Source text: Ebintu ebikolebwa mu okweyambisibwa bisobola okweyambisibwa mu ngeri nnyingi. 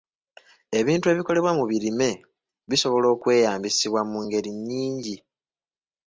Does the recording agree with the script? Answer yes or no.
no